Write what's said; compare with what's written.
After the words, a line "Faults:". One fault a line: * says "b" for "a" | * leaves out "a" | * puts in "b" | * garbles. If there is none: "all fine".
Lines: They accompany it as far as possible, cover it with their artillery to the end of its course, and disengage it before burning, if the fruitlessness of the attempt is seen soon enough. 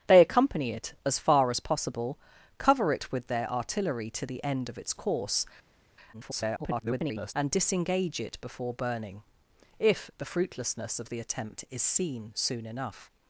They accompany it as far as possible, cover it with their artillery to the end of its course, [garbled] and disengage it before burning, if the fruitlessness of the attempt is seen soon enough.
Faults:
* garbles